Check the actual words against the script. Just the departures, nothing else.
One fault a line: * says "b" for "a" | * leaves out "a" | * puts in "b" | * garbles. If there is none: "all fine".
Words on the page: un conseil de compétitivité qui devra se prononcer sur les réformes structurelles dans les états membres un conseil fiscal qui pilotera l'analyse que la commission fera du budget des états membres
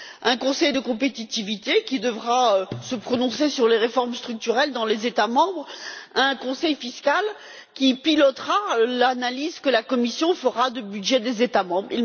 all fine